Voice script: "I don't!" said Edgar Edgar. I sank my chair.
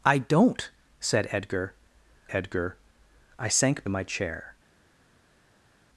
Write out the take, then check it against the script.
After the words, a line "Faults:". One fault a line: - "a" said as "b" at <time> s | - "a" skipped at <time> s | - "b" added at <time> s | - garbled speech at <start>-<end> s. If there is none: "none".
"I don't!" said Edgar Edgar. I sank my chair.
Faults:
none